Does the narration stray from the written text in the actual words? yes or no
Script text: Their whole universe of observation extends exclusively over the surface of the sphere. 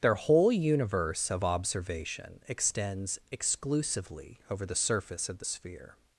no